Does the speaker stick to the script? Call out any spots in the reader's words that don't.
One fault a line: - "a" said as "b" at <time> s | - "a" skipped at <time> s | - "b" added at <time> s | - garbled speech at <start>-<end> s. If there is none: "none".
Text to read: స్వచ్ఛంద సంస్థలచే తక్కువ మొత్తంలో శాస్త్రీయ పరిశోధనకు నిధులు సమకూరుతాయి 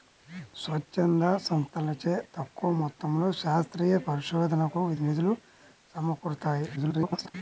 - garbled speech at 6.8-7.4 s